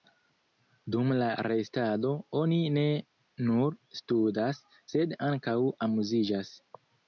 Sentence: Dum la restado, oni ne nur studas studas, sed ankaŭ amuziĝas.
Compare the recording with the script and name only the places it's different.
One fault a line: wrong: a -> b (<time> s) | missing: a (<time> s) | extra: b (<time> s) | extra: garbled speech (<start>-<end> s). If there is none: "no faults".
missing: studas (4.7 s)